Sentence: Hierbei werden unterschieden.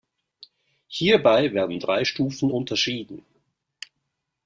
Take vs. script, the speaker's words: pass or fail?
fail